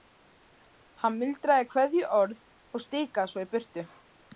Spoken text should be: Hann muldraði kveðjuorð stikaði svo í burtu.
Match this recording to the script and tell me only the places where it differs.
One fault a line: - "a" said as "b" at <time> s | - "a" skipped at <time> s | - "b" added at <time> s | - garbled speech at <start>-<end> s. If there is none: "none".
- "og" added at 2.8 s